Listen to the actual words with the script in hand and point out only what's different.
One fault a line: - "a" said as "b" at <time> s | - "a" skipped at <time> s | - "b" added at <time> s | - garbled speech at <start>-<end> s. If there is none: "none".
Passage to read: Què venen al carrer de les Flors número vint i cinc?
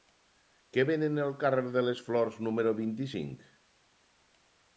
none